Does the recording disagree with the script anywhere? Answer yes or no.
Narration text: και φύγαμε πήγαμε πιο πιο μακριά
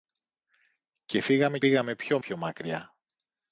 no